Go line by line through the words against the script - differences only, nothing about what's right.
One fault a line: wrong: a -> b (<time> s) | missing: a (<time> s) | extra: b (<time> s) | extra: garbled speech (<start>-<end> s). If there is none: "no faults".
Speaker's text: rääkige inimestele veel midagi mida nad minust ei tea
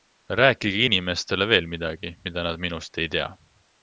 no faults